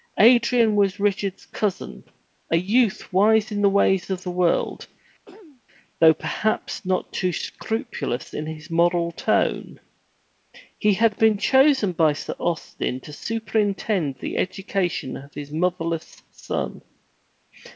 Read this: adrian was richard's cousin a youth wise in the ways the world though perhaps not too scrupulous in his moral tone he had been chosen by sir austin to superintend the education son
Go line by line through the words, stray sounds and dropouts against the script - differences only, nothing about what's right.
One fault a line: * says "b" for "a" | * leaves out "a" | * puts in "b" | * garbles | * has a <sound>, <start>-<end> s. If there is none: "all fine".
* puts in "of"
* has a throat clearing, 5.3-5.6 s
* puts in "of his motherless"